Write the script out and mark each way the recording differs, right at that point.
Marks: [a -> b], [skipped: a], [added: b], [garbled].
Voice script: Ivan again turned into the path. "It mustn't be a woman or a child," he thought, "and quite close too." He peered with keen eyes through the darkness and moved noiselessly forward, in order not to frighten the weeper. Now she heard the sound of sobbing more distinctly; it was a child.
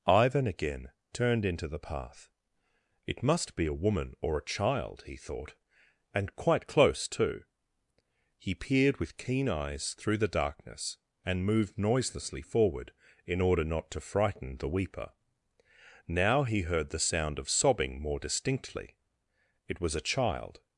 Ivan again turned into the path. "It [mustn't -> must] be a woman or a child," he thought, "and quite close too." He peered with keen eyes through the darkness and moved noiselessly forward, in order not to frighten the weeper. Now [she -> he] heard the sound of sobbing more distinctly; it was a child.